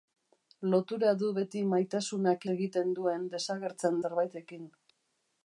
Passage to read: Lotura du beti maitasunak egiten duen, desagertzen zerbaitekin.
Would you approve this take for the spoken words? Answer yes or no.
yes